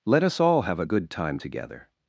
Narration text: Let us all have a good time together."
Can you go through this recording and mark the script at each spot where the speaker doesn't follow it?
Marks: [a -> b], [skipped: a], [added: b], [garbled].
Let us all have a good time together."